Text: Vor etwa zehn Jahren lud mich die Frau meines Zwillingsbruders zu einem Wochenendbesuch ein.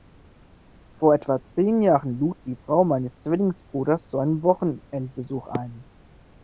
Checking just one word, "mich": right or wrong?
wrong